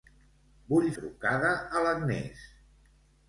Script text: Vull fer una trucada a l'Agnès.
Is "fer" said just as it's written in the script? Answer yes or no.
no